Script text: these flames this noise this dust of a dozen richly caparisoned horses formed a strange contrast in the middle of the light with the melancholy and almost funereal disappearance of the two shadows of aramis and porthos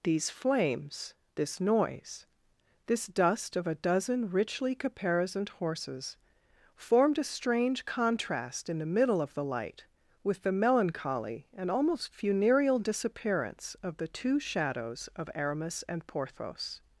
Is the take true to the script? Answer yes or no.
yes